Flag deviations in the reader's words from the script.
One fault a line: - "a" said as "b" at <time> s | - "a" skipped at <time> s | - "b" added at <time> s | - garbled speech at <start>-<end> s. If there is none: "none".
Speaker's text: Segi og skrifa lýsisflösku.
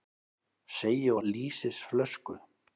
- "skrifa" skipped at 1.2 s